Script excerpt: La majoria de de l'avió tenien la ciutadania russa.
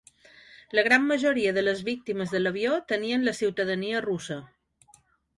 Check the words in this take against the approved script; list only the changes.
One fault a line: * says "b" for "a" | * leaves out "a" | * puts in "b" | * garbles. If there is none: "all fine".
* puts in "gran"
* puts in "les víctimes"